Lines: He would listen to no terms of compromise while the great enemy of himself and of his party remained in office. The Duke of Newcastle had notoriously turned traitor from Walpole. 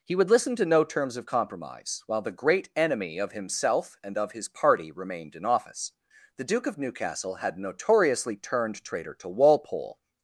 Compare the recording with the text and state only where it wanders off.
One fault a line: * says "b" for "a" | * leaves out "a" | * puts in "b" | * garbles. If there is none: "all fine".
* says "to" for "from"